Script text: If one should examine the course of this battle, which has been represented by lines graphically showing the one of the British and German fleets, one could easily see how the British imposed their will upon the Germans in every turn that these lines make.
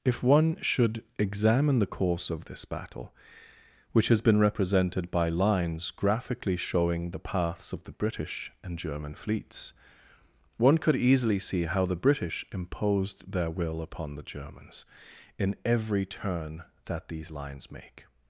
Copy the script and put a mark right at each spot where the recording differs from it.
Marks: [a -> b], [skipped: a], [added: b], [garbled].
If one should examine the course of this battle, which has been represented by lines graphically showing the [one -> paths] of the British and German fleets, one could easily see how the British imposed their will upon the Germans in every turn that these lines make.